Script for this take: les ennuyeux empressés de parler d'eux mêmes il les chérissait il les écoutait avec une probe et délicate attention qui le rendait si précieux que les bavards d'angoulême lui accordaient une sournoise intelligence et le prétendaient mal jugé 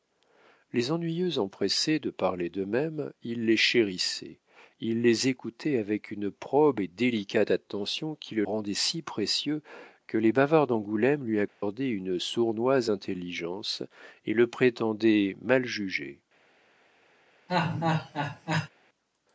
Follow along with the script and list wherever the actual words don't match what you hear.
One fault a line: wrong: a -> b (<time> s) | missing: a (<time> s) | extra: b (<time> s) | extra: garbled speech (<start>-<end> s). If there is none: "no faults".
no faults